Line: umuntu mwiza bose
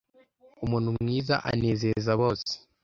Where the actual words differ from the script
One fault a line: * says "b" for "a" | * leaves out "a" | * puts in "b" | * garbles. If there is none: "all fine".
* puts in "anezeza"